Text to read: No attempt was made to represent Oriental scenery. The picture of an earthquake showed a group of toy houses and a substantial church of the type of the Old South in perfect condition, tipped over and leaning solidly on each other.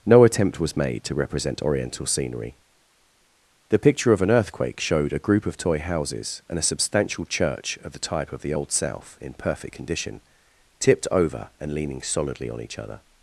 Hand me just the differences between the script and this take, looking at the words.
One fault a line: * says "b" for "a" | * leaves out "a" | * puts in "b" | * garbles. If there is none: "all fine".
all fine